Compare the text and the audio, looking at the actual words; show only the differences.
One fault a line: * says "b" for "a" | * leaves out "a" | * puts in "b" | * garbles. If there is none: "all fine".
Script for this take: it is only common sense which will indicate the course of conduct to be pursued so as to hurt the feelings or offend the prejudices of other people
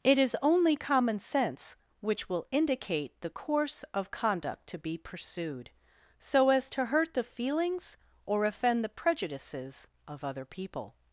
all fine